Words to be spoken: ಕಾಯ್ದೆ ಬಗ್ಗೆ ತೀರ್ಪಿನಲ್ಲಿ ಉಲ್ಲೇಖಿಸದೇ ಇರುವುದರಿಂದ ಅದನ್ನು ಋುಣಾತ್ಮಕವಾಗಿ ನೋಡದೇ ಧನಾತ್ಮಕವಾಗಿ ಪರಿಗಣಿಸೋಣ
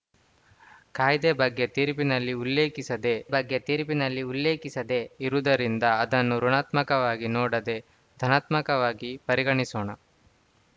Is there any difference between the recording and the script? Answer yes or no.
yes